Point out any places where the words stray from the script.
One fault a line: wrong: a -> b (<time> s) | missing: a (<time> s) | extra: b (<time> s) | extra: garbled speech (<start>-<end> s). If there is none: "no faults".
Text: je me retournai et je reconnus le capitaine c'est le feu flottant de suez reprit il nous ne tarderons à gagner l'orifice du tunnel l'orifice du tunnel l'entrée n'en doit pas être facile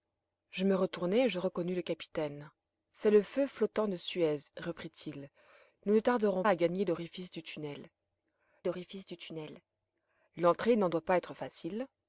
no faults